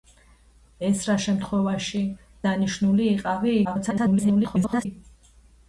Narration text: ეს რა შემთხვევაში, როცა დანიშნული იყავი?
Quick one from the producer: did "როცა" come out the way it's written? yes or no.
no